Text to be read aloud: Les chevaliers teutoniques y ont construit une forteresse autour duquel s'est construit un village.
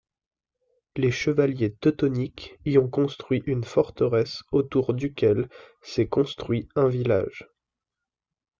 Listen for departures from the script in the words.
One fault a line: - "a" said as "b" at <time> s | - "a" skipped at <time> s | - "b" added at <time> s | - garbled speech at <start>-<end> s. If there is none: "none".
none